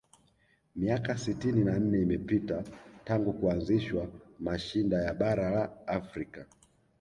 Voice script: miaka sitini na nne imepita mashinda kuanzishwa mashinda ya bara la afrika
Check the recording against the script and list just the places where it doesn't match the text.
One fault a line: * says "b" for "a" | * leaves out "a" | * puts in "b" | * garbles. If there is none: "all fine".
* says "tangu" for "mashinda"